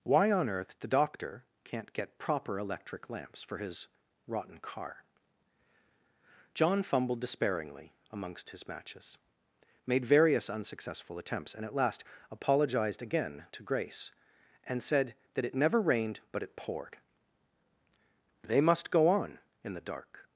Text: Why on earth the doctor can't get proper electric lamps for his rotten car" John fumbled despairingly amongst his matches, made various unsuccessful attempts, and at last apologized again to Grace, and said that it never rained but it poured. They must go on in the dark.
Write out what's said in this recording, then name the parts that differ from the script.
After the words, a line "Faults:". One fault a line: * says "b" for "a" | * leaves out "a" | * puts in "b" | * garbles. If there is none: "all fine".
Why on earth the doctor can't get proper electric lamps for his rotten car" John fumbled despairingly amongst his matches, made various unsuccessful attempts, and at last apologized again to Grace, and said that it never rained but it poured. They must go on in the dark.
Faults:
all fine